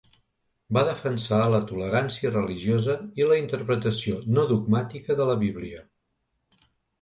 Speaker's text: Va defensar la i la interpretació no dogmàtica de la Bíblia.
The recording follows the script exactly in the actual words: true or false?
false